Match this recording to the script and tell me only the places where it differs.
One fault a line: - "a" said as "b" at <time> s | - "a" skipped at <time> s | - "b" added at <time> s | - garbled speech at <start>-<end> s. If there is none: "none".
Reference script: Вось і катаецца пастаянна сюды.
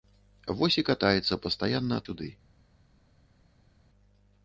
none